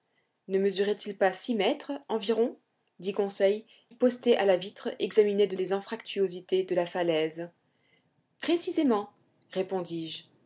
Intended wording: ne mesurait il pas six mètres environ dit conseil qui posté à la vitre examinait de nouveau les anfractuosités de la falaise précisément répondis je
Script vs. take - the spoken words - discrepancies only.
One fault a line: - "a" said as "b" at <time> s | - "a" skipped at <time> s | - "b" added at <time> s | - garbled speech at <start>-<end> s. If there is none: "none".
- "qui" skipped at 3.6 s
- "nouveau" skipped at 5.6 s